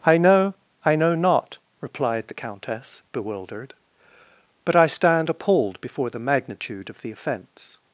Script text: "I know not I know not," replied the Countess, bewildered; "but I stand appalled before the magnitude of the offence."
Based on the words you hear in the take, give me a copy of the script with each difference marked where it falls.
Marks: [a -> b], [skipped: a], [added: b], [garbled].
"I know [skipped: not] I know not," replied the Countess, bewildered; "but I stand appalled before the magnitude of the offence."